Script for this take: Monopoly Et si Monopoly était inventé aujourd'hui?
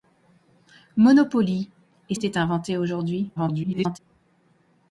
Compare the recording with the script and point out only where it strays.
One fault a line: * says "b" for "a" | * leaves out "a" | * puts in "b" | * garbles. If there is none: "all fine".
* leaves out "si Monopoly"
* garbles